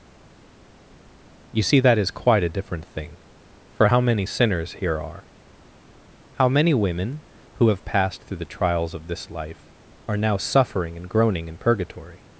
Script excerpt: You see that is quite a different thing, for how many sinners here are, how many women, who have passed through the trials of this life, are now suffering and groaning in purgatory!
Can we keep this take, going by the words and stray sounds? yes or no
yes